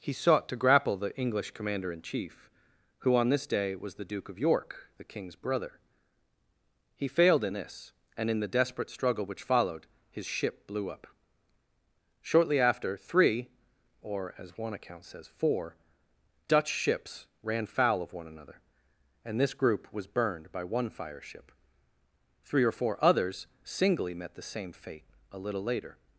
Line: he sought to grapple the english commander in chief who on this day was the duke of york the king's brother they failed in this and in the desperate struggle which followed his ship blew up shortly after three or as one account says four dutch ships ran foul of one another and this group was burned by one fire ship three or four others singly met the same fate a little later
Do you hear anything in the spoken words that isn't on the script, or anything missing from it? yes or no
yes